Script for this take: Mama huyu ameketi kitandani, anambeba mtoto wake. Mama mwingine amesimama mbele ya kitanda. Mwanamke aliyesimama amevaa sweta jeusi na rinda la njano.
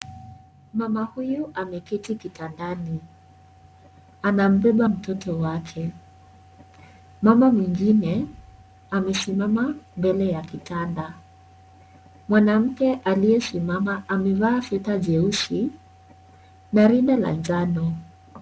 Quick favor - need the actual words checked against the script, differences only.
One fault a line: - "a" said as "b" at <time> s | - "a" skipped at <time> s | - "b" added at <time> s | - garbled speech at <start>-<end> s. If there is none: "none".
none